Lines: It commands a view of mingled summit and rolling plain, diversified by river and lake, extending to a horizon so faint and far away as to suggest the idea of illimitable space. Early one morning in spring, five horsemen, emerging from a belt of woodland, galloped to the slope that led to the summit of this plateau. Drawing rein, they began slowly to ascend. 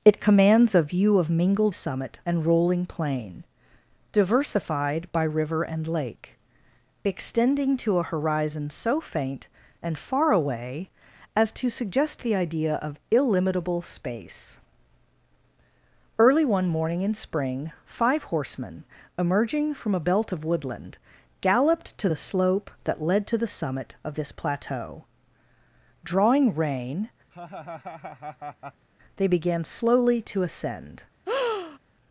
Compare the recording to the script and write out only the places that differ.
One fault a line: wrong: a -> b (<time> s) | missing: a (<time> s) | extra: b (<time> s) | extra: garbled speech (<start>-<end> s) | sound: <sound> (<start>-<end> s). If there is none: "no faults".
sound: laugh (27.3-28.9 s)
sound: breath (31.3-31.8 s)